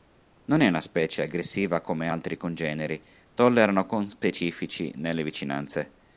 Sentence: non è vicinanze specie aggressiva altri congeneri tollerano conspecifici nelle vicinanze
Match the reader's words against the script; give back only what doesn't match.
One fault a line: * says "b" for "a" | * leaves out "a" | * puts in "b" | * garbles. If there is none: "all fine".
* says "una" for "vicinanze"
* puts in "come"